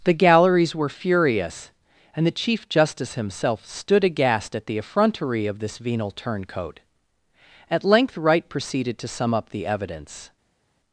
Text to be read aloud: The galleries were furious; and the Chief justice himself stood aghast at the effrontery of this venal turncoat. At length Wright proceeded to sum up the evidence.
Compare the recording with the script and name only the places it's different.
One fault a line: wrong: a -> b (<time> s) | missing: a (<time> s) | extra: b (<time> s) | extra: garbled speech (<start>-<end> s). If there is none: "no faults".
no faults